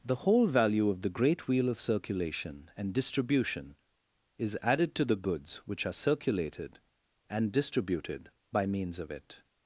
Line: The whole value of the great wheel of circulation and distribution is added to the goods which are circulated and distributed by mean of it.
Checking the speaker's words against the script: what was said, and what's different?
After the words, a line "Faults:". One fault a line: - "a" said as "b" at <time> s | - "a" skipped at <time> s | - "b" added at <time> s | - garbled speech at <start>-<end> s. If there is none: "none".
The whole value of the great wheel of circulation and distribution is added to the goods which are circulated and distributed by means of it.
Faults:
- "mean" said as "means" at 8.7 s